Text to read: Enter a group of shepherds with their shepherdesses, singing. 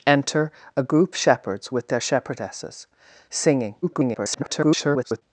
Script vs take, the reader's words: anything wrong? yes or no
yes